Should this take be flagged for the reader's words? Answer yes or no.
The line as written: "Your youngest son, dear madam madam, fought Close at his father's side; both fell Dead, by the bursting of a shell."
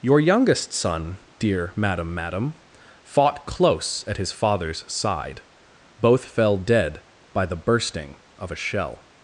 no